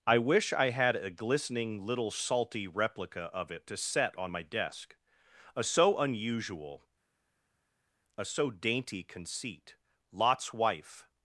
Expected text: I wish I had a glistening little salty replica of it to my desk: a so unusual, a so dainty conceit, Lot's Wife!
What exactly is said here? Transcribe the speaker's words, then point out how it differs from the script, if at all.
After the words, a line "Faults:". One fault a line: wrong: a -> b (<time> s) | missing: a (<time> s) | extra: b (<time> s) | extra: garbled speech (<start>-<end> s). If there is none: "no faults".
I wish I had a glistening little salty replica of it to set on my desk: a so unusual, a so dainty conceit, Lot's Wife!
Faults:
extra: set on (3.8 s)